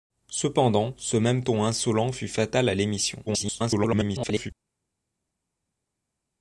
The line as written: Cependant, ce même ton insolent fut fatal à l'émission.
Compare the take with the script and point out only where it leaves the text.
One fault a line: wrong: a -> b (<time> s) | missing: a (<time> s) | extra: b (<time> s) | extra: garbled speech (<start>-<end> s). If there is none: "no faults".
extra: garbled speech (3.3-4.5 s)